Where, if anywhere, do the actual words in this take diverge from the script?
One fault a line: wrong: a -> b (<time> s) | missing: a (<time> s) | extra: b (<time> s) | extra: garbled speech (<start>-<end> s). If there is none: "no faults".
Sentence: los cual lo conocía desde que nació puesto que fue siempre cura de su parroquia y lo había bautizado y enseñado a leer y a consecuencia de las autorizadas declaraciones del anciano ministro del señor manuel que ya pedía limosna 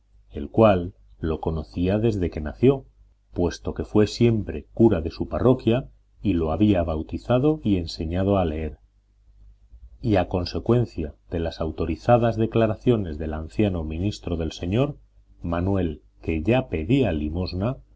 wrong: los -> el (0.3 s)